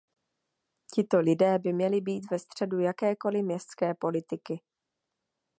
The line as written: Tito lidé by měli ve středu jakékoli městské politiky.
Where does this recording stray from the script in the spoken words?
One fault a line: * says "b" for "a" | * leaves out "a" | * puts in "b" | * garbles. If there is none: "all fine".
* puts in "být"